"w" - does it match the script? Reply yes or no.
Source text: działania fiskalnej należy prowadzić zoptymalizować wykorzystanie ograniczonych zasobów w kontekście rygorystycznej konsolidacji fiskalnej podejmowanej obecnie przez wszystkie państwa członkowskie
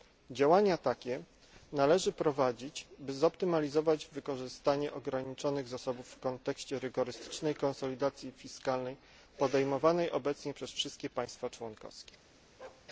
yes